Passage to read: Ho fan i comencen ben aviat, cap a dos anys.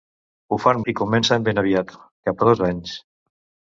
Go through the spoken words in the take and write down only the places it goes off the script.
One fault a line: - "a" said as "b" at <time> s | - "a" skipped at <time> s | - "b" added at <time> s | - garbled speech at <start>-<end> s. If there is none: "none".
none